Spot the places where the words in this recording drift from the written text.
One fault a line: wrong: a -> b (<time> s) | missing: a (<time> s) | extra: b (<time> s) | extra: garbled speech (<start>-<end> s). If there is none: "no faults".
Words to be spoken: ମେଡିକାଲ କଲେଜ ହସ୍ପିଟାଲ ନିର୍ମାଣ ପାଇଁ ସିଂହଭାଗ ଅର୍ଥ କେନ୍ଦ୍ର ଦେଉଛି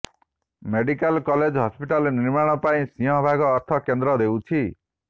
no faults